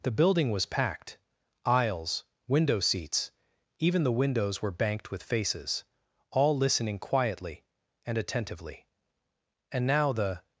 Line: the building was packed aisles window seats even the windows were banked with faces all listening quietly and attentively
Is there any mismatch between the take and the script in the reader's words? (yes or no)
yes